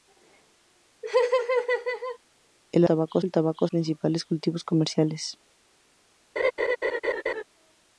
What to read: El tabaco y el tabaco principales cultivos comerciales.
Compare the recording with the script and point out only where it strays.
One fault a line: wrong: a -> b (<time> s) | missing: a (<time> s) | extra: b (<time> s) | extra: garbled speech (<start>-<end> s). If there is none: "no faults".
no faults